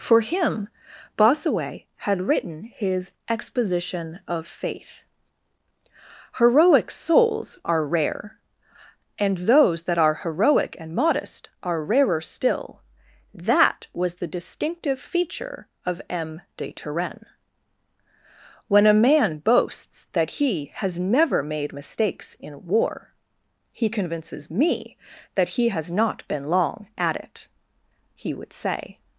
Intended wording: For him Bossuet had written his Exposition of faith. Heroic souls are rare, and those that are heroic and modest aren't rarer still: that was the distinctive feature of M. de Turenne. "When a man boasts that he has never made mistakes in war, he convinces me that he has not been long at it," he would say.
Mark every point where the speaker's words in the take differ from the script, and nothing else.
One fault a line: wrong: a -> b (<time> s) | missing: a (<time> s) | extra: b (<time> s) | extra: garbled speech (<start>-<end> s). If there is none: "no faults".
wrong: aren't -> are (11.6 s)